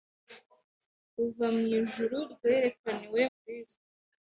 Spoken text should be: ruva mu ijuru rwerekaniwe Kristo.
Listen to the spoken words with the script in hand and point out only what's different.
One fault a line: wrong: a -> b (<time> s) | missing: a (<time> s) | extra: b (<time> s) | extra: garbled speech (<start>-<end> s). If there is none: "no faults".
no faults